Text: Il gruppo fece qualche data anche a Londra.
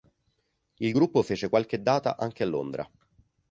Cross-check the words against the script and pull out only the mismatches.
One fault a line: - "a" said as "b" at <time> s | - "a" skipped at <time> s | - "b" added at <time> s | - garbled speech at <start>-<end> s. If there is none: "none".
none